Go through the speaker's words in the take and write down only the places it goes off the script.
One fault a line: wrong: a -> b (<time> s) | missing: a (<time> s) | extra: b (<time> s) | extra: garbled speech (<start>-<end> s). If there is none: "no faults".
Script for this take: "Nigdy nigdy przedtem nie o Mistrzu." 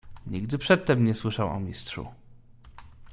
missing: nigdy (0.6 s)
extra: słyszał (1.1 s)